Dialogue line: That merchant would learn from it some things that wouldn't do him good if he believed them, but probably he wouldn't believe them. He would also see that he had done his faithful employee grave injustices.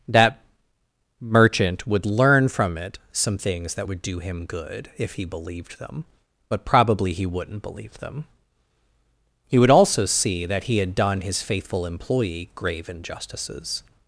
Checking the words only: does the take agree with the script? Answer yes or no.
no